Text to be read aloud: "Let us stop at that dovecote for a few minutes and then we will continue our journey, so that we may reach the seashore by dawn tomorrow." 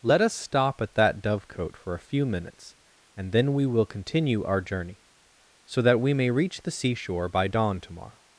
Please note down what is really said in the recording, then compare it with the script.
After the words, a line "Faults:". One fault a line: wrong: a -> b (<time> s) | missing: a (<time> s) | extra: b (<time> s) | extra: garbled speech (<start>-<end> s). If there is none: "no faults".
"Let us stop at that dovecote for a few minutes and then we will continue our journey, so that we may reach the seashore by dawn tomorrow."
Faults:
no faults